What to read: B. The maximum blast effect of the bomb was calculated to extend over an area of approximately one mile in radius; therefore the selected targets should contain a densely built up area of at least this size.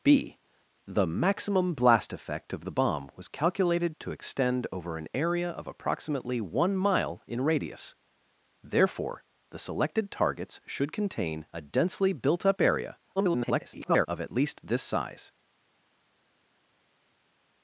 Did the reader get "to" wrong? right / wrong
right